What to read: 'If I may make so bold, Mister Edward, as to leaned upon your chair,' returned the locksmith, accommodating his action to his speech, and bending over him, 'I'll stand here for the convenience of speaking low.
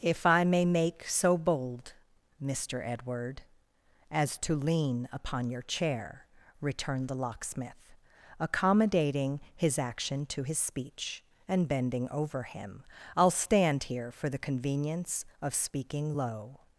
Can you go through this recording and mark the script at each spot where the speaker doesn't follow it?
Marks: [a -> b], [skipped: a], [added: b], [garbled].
'If I may make so bold, Mister Edward, as to [leaned -> lean] upon your chair,' returned the locksmith, accommodating his action to his speech, and bending over him, 'I'll stand here for the convenience of speaking low.